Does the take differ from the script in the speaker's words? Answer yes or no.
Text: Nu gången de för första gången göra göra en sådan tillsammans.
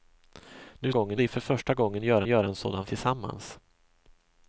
no